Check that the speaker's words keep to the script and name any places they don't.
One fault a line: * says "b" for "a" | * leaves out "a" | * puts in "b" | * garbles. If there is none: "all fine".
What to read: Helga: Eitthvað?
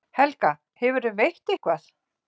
* puts in "Hefurðu veitt"